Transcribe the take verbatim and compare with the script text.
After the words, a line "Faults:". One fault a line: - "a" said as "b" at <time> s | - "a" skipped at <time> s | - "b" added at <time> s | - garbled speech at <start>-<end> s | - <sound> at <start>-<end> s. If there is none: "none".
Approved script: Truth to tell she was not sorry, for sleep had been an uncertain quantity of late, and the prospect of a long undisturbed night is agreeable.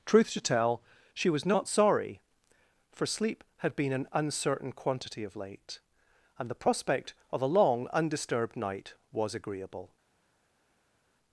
Truth to tell she was not sorry, for sleep had been an uncertain quantity of late, and the prospect of a long undisturbed night was agreeable.
Faults:
- "is" said as "was" at 9.1 s